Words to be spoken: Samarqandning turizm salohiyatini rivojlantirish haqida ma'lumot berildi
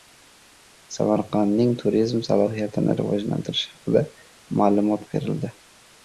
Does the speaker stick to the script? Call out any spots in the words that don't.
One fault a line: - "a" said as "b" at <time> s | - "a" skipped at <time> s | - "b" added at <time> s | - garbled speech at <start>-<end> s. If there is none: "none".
none